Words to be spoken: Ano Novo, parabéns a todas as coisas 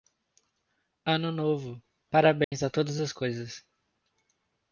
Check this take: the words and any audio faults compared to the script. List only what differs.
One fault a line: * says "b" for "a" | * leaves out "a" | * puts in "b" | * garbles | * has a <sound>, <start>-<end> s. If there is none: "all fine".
* has a dropout, 2.4-2.5 s